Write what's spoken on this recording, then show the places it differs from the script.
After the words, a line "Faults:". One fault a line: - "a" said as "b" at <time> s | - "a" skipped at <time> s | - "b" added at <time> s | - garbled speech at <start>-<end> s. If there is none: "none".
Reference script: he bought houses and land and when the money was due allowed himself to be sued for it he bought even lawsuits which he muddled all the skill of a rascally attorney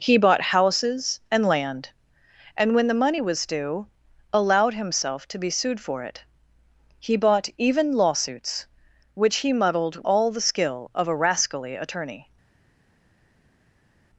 he bought houses and land and when the money was due allowed himself to be sued for it he bought even lawsuits which he muddled all the skill of a rascally attorney
Faults:
none